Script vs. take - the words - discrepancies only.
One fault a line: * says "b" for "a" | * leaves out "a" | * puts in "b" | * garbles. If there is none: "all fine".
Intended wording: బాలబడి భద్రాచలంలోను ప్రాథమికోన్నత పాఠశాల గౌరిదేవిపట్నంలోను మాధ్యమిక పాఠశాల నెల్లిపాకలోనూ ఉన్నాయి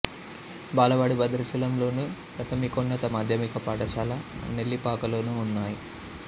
* leaves out "పాఠశాల గౌరిదేవిపట్నంలోను"